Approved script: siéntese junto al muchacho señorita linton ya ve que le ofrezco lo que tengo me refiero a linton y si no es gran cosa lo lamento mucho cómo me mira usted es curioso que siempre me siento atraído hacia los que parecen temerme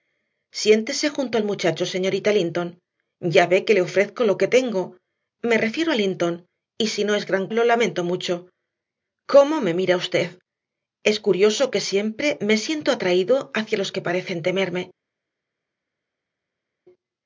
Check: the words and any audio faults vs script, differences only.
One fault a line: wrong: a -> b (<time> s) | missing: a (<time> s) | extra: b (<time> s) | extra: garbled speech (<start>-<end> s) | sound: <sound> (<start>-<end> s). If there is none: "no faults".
missing: cosa (7.5 s)